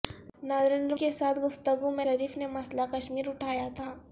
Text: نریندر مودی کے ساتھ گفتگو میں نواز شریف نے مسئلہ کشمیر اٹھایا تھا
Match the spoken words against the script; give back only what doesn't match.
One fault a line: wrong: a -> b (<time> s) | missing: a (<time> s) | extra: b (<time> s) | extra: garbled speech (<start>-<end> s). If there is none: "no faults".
missing: مودی (0.9 s)
missing: نواز (2.0 s)